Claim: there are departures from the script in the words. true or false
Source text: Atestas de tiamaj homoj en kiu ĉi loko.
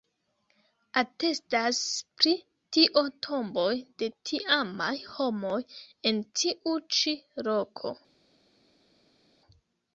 true